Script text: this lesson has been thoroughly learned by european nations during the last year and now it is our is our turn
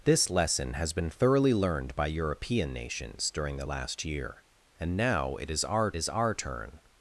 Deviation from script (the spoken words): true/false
false